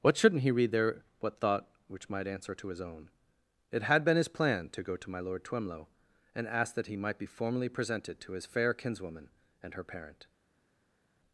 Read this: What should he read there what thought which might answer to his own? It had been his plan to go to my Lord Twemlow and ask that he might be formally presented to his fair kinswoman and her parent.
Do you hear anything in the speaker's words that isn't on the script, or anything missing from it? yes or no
yes